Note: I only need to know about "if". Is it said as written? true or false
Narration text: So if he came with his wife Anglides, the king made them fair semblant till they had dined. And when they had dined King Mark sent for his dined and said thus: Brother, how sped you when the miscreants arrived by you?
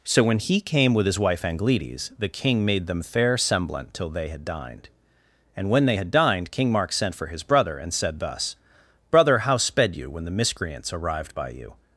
false